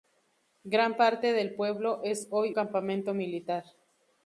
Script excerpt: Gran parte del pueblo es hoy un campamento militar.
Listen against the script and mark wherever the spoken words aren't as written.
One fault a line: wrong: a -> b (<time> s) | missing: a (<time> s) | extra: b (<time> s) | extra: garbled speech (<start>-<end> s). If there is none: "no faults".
missing: un (2.5 s)